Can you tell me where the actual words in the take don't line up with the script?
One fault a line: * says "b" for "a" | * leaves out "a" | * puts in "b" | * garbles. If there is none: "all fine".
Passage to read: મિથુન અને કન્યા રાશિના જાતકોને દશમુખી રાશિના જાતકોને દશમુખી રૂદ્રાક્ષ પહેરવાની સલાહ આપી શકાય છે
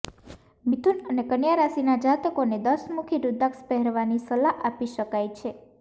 * leaves out "રાશિના જાતકોને દશમુખી"